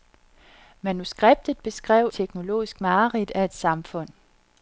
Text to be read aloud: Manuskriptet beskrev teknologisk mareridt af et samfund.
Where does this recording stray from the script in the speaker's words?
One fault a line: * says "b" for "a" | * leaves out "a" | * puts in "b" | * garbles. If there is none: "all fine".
all fine